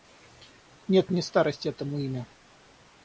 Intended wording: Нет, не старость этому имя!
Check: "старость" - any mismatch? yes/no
no